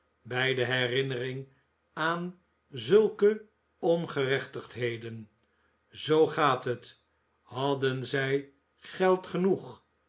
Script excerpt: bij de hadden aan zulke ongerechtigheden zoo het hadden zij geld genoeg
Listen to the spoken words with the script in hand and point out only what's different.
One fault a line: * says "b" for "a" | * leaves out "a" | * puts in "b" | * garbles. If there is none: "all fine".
* says "herinnering" for "hadden"
* puts in "gaat"